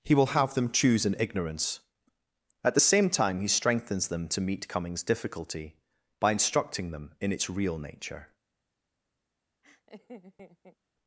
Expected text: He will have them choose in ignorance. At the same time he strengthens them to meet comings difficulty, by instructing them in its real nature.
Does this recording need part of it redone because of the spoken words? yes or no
no